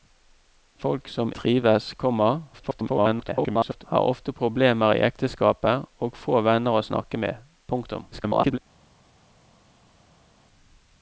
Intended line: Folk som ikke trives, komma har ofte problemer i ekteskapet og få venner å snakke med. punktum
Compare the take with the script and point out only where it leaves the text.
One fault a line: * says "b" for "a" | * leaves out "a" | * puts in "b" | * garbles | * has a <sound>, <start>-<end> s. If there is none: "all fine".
* leaves out "ikke"
* garbles
* garbles